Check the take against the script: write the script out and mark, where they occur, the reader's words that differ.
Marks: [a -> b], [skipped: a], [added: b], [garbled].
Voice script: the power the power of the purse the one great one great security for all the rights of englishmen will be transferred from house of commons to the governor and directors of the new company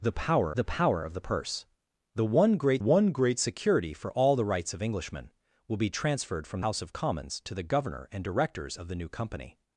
the power the power of the purse the one great one great security for all the rights of englishmen will be transferred from house of commons to the governor and directors of the new company